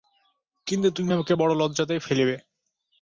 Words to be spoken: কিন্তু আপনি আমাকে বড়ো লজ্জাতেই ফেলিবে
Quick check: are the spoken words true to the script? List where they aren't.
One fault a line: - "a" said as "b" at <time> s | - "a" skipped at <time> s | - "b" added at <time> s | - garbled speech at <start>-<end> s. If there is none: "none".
- "আপনি" said as "তুমি" at 0.9 s